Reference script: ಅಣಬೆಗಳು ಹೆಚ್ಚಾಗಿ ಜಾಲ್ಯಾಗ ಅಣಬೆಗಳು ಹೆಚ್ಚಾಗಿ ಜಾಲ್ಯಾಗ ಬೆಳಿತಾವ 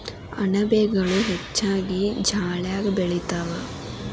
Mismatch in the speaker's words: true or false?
true